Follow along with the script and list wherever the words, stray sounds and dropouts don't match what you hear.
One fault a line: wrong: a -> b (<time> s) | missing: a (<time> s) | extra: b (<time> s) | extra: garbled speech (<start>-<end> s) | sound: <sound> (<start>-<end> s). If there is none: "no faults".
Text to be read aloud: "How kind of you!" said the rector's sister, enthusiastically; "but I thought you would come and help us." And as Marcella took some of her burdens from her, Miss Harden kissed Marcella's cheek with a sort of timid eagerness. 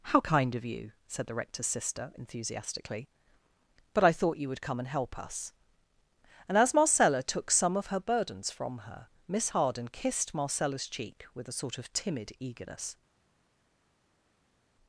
no faults